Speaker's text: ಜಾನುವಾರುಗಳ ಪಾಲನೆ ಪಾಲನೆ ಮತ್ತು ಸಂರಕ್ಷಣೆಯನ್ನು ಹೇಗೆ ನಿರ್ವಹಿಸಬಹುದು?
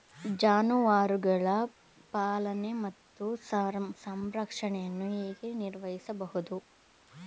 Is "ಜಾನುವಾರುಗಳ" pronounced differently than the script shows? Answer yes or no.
no